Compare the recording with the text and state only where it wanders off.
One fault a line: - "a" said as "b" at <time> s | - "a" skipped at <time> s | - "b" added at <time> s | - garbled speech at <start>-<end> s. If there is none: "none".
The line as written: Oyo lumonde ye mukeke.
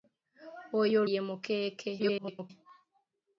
- "lumonde" skipped at 1.0 s
- garbled speech at 2.0-2.5 s